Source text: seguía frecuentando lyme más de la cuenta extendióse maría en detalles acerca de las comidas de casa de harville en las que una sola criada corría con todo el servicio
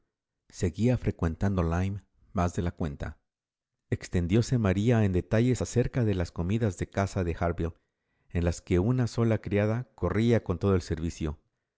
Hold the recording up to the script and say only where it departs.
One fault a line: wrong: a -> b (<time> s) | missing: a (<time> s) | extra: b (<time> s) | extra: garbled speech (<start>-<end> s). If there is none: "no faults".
no faults